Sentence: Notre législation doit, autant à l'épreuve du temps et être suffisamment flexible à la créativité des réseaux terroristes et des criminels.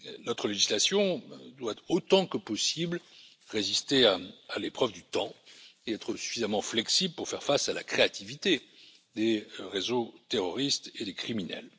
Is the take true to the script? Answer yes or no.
no